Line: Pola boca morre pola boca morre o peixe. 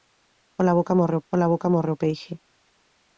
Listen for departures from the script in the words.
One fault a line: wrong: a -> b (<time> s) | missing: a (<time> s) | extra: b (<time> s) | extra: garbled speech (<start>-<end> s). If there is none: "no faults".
no faults